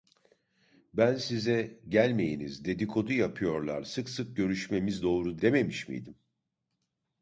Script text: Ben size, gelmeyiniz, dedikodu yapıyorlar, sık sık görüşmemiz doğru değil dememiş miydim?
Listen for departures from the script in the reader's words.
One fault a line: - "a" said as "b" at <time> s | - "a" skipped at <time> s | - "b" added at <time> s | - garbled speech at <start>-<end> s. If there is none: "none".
- "değil" skipped at 5.4 s